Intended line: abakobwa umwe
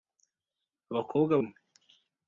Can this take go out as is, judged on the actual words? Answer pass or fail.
pass